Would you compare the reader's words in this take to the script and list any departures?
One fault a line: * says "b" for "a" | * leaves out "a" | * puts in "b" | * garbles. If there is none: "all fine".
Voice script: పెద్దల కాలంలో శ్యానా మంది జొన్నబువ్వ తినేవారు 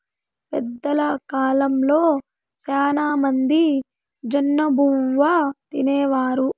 all fine